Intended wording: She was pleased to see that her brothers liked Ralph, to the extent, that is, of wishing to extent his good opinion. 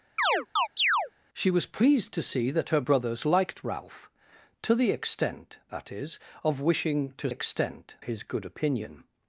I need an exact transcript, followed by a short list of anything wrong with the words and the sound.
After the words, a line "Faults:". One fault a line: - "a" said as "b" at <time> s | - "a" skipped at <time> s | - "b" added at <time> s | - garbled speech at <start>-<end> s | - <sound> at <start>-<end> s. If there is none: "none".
She was pleased to see that her brothers liked Ralph, to the extent, that is, of wishing to extent his good opinion.
Faults:
- chirp at 0.2-1.1 s